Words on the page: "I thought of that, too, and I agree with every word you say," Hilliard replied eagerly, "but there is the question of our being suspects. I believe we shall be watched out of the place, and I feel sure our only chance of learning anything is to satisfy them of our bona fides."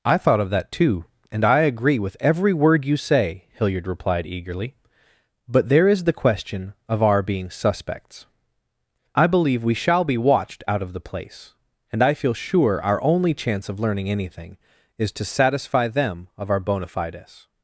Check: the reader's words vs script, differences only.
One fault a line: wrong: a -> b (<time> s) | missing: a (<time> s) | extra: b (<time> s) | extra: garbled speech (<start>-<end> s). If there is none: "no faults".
no faults